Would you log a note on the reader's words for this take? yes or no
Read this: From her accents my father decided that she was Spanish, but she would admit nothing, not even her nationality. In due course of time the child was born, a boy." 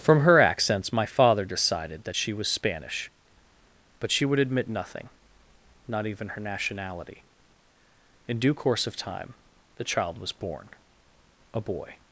no